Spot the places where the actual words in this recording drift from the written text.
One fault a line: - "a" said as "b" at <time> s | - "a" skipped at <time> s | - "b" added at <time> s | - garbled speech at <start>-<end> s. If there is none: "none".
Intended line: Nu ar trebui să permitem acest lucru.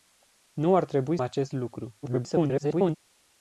- "să permitem" skipped at 1.2 s
- garbled speech at 2.0-3.0 s